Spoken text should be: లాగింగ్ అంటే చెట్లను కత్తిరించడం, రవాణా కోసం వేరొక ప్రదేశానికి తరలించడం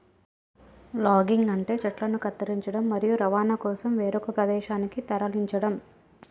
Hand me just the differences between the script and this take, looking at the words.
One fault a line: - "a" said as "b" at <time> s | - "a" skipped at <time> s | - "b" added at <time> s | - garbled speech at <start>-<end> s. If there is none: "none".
- "మరియు" added at 2.9 s